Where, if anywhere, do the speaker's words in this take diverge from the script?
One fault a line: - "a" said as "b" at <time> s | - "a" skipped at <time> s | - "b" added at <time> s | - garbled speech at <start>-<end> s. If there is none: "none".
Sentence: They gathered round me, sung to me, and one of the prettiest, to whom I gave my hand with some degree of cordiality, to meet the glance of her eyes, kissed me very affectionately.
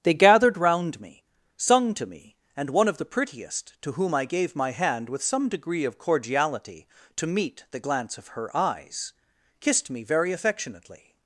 none